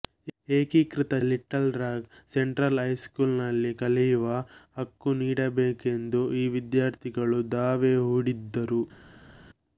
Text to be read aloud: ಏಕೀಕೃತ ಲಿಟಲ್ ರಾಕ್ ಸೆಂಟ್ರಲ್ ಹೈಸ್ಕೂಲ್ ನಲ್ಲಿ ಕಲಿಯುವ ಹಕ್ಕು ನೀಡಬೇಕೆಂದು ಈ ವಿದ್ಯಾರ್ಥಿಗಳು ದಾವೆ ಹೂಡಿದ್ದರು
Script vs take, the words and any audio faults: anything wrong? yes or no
no